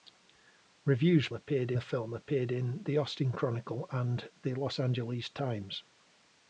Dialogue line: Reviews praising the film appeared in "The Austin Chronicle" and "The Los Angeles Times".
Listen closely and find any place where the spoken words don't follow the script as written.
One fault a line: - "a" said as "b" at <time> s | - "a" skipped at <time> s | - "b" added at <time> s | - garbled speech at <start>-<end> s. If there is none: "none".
- "praising" said as "appeared" at 1.3 s